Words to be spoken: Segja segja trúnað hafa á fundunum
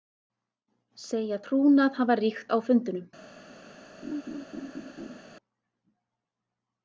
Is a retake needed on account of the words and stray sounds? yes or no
yes